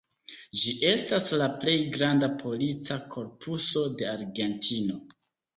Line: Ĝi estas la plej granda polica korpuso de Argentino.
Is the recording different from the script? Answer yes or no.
no